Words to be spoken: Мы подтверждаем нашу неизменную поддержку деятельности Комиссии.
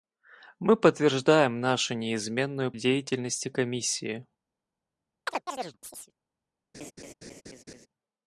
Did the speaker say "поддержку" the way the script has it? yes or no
no